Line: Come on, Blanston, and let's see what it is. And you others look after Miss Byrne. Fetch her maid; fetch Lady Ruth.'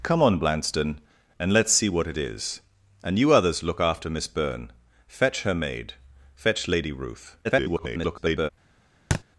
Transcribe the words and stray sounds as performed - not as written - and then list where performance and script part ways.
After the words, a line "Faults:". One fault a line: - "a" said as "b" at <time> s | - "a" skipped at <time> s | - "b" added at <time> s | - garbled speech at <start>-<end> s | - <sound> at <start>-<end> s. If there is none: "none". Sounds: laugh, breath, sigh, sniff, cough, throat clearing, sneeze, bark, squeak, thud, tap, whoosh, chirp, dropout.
Come on, Blanston, and let's see what it is. And you others look after Miss Byrne. Fetch her maid; fetch Lady Ruth.' [garbled]
Faults:
- garbled speech at 7.4-8.5 s
- thud at 9.1-9.2 s